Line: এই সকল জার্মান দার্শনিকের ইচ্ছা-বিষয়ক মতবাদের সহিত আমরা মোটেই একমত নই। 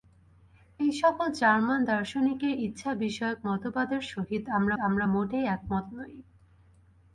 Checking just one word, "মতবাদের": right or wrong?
right